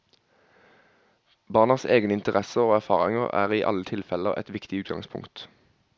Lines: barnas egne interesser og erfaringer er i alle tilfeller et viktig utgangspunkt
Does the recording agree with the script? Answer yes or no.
yes